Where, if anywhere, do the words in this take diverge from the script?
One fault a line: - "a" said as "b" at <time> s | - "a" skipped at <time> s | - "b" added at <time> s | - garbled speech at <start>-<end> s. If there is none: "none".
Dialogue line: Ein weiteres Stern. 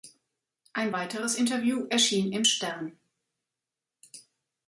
- "Interview erschien im" added at 1.3 s